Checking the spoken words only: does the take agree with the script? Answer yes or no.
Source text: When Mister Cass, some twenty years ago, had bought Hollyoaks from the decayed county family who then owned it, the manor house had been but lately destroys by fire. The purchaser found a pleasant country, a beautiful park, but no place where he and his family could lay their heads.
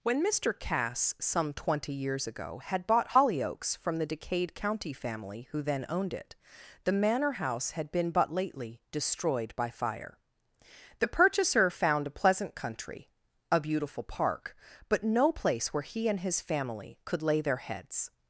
no